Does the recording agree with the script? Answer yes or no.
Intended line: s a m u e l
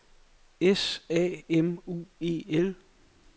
yes